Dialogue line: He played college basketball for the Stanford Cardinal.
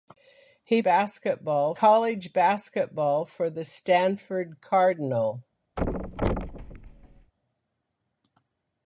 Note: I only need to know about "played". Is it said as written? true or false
false